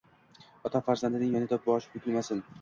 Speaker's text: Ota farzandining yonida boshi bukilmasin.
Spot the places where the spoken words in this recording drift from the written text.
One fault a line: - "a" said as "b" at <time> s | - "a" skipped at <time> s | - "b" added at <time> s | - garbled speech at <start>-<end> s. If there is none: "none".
none